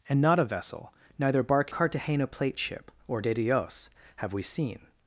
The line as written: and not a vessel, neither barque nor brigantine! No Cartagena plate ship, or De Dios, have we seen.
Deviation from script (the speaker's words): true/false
true